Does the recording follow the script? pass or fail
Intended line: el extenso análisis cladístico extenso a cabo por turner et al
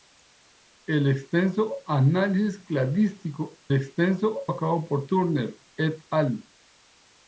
pass